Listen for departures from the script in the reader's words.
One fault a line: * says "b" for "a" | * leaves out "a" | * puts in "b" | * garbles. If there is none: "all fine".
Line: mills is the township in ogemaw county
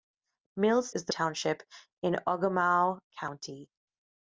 all fine